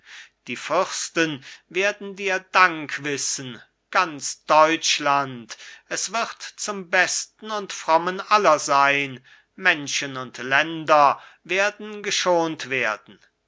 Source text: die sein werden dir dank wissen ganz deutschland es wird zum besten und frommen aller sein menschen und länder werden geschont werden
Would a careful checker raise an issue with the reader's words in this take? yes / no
yes